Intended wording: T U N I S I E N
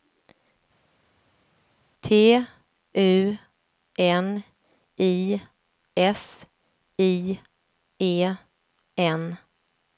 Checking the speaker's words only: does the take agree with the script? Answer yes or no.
yes